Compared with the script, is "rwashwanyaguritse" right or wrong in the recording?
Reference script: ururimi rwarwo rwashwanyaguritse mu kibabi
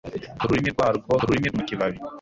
wrong